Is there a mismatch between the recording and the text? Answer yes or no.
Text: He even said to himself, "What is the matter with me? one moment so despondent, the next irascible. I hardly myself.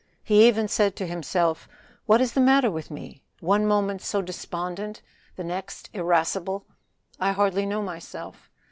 yes